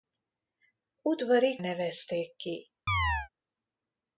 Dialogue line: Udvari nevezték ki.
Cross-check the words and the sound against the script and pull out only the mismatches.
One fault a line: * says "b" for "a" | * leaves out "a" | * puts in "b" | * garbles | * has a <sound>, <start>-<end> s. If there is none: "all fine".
* has a chirp, 2.9-3.3 s